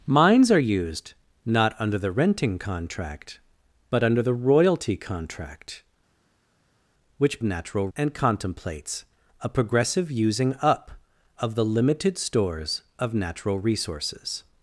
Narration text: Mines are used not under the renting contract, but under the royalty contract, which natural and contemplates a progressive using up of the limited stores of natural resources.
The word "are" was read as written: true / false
true